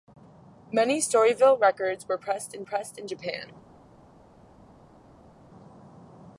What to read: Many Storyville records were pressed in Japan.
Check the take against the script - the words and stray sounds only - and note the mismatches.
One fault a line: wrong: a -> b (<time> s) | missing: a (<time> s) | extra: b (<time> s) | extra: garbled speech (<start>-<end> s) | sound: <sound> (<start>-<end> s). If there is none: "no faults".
extra: pressed in (2.6 s)